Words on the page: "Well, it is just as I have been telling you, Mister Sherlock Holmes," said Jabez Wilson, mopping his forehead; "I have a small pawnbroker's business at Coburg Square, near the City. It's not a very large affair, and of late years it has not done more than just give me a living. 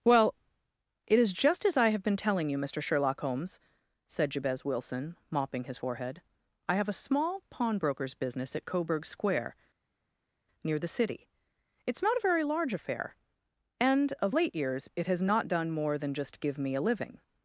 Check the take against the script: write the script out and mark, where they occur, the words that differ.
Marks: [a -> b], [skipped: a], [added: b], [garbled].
"Well, it is just as I have been telling you, Mister Sherlock Holmes," said Jabez Wilson, mopping his forehead; "I have a small pawnbroker's business at Coburg Square, near the City. It's not a very large affair, and of late years it has not done more than just give me a living.